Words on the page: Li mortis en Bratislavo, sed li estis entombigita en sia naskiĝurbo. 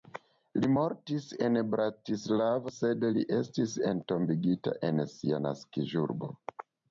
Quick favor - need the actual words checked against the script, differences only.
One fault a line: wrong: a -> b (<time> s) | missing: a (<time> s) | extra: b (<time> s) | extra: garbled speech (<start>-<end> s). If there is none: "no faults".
no faults